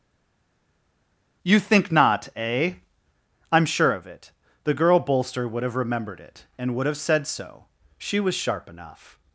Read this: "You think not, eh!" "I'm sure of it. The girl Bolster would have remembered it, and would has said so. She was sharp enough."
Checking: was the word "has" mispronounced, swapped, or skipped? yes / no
yes